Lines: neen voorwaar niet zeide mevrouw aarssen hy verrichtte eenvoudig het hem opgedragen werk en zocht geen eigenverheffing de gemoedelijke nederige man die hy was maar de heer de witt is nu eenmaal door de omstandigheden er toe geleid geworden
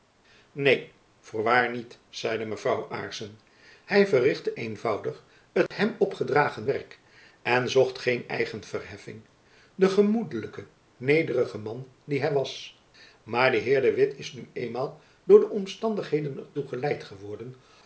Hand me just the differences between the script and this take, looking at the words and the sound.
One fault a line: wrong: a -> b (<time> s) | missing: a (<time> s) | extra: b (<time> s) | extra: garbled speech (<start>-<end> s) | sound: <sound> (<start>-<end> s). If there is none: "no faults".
sound: dropout (5.7-5.7 s)